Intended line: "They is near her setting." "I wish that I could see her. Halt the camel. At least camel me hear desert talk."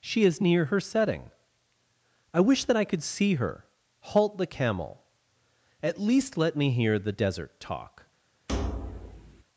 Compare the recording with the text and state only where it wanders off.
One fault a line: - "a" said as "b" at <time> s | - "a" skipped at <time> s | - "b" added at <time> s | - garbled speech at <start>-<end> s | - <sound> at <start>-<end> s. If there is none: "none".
- "They" said as "She" at 0.0 s
- "camel" said as "let" at 6.4 s
- "the" added at 7.0 s
- thud at 8.5-9.4 s